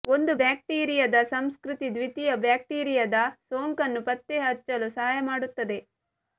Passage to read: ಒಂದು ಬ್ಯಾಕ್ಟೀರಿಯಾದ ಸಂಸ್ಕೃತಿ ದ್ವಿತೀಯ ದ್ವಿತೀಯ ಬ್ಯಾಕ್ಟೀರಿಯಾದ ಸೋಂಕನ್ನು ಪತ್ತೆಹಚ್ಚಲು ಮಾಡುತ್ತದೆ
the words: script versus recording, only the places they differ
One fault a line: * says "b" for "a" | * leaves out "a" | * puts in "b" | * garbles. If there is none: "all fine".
* leaves out "ದ್ವಿತೀಯ"
* puts in "ಸಹಾಯ"